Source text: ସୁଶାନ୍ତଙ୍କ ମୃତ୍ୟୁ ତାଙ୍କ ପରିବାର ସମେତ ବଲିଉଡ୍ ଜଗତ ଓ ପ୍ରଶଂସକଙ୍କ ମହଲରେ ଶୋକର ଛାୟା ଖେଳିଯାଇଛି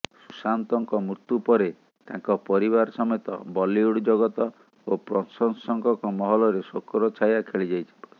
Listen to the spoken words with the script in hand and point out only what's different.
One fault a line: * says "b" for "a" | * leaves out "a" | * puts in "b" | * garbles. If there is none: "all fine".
* puts in "ପରେ"